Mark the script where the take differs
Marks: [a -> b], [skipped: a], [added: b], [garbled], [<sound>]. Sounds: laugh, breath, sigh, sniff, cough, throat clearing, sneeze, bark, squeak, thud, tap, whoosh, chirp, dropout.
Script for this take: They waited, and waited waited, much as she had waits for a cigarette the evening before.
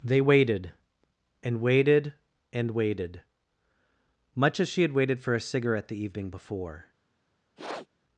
They waited, and waited [added: and] waited, much as she had [waits -> waited] for a cigarette the evening before. [sniff]